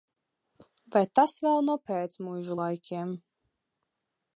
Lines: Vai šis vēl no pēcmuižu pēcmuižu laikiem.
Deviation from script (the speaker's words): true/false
true